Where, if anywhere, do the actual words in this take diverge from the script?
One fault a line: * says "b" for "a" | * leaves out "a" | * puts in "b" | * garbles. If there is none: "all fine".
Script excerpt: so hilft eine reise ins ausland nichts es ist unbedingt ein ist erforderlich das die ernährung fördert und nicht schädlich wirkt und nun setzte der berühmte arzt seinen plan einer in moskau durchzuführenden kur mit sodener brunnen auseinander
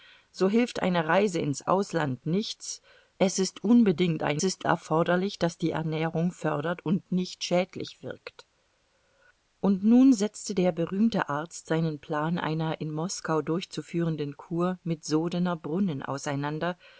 all fine